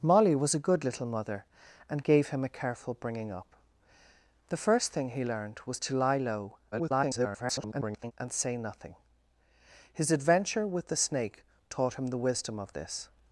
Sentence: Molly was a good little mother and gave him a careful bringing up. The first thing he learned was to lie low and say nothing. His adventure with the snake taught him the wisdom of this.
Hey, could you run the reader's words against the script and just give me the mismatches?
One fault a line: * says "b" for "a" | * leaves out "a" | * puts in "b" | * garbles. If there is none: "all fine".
* garbles